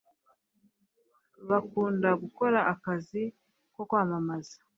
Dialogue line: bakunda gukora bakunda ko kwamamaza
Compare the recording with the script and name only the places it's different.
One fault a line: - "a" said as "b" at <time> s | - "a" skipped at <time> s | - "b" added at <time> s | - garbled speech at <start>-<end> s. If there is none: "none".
- "bakunda" said as "akazi" at 2.7 s